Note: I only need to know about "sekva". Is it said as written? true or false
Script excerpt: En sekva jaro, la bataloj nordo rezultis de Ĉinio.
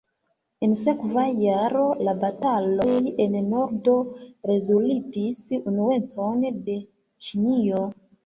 true